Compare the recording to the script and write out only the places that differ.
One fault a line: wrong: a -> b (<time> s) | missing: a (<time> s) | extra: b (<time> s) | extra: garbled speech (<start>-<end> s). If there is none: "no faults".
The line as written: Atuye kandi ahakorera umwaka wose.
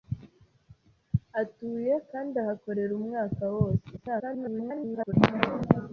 extra: garbled speech (4.0-5.1 s)